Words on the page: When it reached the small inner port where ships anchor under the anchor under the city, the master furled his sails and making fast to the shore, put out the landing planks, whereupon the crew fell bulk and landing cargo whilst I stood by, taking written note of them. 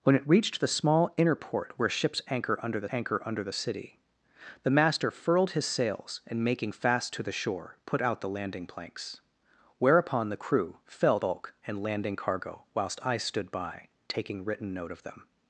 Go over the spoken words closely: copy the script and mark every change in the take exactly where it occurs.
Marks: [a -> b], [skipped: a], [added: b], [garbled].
When it reached the small inner port where ships anchor under the anchor under the city, the master furled his sails and making fast to the shore, put out the landing planks, whereupon the crew fell bulk and landing cargo whilst I stood by, taking written note of them.